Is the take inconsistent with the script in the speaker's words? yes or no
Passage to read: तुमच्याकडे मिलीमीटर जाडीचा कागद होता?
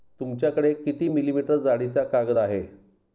yes